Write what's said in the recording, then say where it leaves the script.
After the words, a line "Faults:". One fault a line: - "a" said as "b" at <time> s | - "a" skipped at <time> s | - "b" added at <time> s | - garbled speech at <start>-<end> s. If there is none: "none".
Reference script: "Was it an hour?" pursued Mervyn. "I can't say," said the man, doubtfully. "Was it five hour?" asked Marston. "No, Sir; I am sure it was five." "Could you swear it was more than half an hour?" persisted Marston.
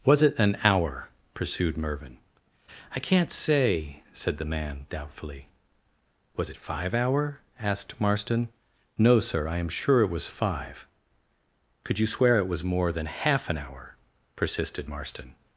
"Was it an hour?" pursued Mervyn. "I can't say," said the man, doubtfully. "Was it five hour?" asked Marston. "No, Sir; I am sure it was five." "Could you swear it was more than half an hour?" persisted Marston.
Faults:
none